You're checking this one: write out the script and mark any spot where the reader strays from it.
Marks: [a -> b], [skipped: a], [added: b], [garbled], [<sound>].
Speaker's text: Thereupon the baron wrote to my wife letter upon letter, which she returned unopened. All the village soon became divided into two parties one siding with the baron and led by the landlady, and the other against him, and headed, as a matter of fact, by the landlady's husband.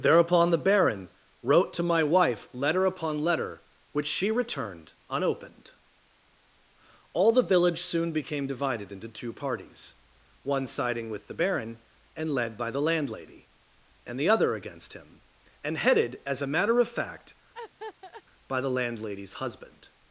Thereupon the baron wrote to my wife letter upon letter, which she returned unopened. All the village soon became divided into two parties one siding with the baron and led by the landlady, and the other against him, and headed, as a matter of fact, [laugh] by the landlady's husband.